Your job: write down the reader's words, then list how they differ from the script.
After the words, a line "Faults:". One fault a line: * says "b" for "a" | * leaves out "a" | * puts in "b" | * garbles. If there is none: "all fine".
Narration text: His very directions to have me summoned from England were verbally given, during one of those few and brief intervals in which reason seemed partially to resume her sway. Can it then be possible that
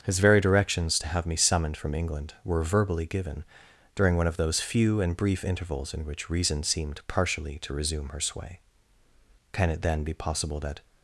His very directions to have me summoned from England were verbally given, during one of those few and brief intervals in which reason seemed partially to resume her sway. Can it then be possible that
Faults:
all fine